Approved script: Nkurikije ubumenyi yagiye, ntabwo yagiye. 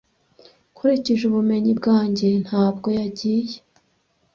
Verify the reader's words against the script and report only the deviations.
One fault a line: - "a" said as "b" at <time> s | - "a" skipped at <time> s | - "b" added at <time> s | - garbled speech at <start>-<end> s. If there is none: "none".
- "yagiye" said as "bwanjye" at 1.8 s